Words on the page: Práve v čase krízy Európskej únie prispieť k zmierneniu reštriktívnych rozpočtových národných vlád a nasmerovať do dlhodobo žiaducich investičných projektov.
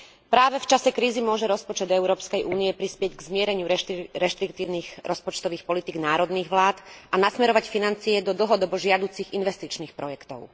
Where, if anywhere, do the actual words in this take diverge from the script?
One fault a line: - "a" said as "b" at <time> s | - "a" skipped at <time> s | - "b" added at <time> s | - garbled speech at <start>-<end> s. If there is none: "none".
- "môže rozpočet" added at 1.2 s
- "politík" added at 5.7 s
- "financie" added at 7.7 s